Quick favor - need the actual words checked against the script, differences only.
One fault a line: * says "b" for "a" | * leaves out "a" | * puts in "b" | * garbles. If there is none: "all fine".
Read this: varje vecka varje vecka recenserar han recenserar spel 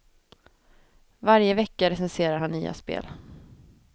* leaves out "varje vecka"
* says "nya" for "recenserar"